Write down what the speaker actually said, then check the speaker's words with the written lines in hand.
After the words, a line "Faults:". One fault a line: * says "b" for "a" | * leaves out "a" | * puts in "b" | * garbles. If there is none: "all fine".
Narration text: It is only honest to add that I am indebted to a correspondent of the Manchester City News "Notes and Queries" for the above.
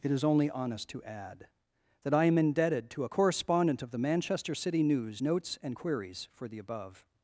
It is only honest to add that I am indebted to a correspondent of the Manchester City News "Notes and Queries" for the above.
Faults:
all fine